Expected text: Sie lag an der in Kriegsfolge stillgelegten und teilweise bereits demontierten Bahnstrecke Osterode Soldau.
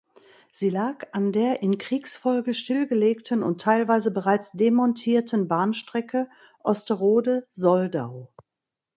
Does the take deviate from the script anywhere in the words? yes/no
no